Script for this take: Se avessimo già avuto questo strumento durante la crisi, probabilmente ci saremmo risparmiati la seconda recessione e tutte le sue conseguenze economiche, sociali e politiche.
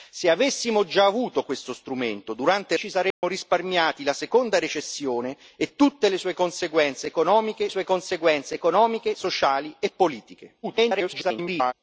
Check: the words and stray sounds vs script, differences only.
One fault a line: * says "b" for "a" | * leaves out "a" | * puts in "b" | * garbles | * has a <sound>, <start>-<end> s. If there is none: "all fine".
* leaves out "la crisi probabilmente"
* has a dropout, 3.1-3.2 s
* puts in "sue conseguenze economiche"
* garbles